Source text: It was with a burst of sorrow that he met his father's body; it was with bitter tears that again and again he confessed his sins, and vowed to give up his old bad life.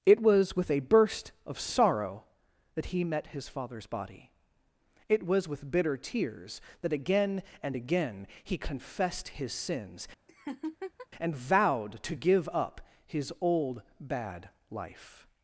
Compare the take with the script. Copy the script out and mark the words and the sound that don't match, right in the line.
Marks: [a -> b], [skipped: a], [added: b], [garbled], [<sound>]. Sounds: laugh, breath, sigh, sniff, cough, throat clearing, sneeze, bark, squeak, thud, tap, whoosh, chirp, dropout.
It was with a burst of sorrow that he met his father's body; it was with bitter tears that again and again he confessed his sins, [laugh] and vowed to give up his old bad life.